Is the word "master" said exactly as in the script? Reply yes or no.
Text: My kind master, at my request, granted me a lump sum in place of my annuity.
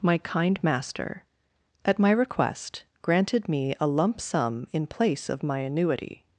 yes